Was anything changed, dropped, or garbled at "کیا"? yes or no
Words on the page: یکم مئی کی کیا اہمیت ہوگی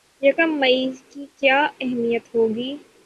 no